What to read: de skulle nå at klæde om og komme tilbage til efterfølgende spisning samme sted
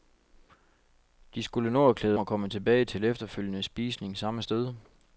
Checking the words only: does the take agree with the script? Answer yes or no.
no